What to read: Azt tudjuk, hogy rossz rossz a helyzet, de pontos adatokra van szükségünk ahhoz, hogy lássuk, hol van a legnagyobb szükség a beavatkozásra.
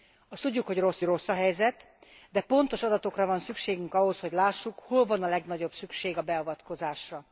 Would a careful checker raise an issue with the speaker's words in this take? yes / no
no